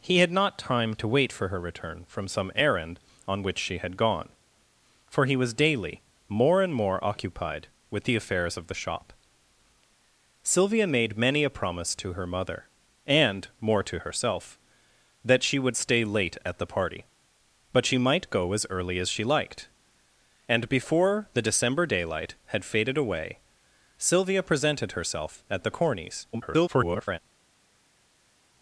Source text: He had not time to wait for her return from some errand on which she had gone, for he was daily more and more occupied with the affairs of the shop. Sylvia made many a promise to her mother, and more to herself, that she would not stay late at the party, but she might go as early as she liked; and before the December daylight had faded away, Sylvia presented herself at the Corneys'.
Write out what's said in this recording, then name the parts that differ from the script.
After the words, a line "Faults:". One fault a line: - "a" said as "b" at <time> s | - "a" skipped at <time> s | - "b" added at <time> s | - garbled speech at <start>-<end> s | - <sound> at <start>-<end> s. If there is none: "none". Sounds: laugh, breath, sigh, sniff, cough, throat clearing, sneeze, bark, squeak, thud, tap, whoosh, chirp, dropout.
He had not time to wait for her return from some errand on which she had gone, for he was daily more and more occupied with the affairs of the shop. Sylvia made many a promise to her mother, and more to herself, that she would stay late at the party, but she might go as early as she liked; and before the December daylight had faded away, Sylvia presented herself at the Corneys'. [garbled]
Faults:
- "not" skipped at 15.8 s
- garbled speech at 26.3-27.2 s